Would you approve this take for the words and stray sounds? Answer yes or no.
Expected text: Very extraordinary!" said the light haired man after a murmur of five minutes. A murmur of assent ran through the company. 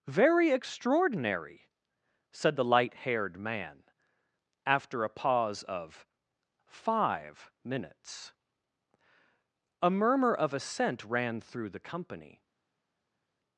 no